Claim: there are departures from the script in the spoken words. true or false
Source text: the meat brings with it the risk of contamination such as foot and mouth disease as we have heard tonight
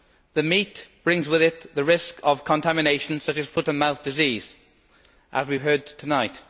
false